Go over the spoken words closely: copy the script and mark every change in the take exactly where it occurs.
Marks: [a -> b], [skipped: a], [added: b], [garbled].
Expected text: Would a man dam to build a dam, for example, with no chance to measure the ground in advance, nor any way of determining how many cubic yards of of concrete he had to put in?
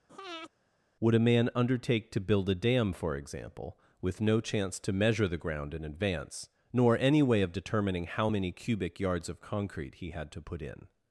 Would a man [dam -> undertake] to build a dam, for example, with no chance to measure the ground in advance, nor any way of determining how many cubic yards of [skipped: of] concrete he had to put in?